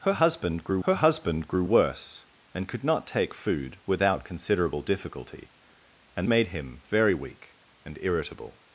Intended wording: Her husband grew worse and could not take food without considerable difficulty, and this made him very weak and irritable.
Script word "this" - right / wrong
wrong